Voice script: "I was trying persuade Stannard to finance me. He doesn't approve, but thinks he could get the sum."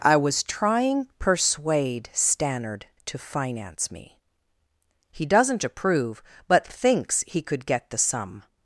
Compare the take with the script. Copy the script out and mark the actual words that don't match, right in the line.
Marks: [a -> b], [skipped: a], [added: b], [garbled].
"I was trying persuade Stannard to finance me. He doesn't approve, but thinks he could get the sum."